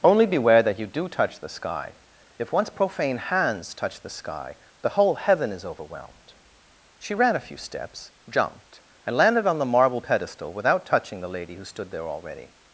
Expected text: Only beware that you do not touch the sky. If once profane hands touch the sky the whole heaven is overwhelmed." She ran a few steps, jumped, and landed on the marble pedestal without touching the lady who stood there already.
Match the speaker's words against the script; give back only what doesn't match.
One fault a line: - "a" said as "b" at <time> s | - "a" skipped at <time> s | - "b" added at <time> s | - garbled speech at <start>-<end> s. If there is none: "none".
- "not" skipped at 1.1 s